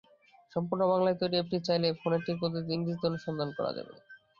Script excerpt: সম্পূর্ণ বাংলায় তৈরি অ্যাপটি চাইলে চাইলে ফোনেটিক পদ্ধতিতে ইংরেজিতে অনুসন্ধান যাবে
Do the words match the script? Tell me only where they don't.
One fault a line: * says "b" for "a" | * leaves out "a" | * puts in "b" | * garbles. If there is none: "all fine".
* leaves out "চাইলে"
* puts in "করা"